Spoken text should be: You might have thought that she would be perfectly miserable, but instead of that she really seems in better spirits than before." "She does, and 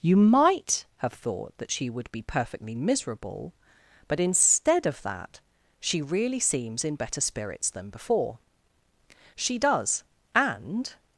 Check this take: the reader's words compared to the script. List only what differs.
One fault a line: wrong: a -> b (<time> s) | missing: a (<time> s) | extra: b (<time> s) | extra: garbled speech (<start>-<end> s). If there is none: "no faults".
no faults